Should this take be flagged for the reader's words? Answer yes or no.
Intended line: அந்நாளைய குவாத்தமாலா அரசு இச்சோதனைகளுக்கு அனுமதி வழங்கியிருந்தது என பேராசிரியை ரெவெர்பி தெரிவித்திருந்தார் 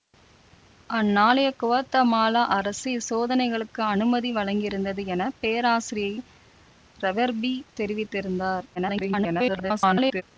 yes